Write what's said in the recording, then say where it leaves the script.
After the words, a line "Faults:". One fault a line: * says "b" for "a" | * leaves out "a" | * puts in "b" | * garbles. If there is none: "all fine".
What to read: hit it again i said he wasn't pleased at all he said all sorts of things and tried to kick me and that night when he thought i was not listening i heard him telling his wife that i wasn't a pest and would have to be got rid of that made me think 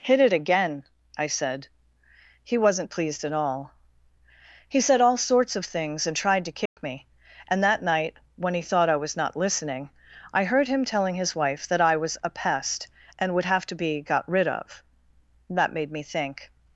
hit it again i said he wasn't pleased at all he said all sorts of things and tried to kick me and that night when he thought i was not listening i heard him telling his wife that i was a pest and would have to be got rid of that made me think
Faults:
* says "was" for "wasn't"